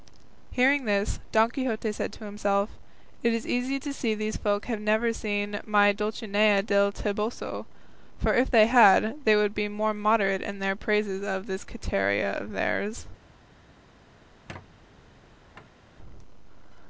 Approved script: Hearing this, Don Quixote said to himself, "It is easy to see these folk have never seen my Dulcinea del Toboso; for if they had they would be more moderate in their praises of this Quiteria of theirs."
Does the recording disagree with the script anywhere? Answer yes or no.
no